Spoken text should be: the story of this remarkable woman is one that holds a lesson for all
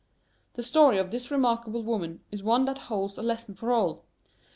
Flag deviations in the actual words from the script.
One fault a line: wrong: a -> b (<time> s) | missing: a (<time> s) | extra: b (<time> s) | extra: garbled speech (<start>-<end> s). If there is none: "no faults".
no faults